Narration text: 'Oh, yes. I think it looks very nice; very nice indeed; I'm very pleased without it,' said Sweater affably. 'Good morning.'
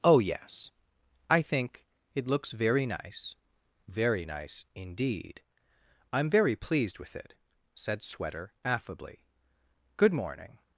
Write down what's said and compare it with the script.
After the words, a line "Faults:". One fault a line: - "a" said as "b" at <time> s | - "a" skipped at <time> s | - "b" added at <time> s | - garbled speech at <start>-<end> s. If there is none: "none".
'Oh, yes. I think it looks very nice; very nice indeed; I'm very pleased with it,' said Sweater affably. 'Good morning.'
Faults:
- "without" said as "with" at 7.0 s